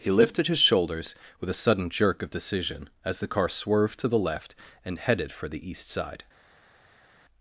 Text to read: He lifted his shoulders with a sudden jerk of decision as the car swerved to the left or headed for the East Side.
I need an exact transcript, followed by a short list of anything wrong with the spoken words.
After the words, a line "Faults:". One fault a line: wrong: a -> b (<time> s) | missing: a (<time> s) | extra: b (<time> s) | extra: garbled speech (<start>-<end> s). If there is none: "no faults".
He lifted his shoulders with a sudden jerk of decision as the car swerved to the left and headed for the East Side.
Faults:
wrong: or -> and (4.8 s)